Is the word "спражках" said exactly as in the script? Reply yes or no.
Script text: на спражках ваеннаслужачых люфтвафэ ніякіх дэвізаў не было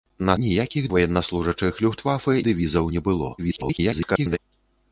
no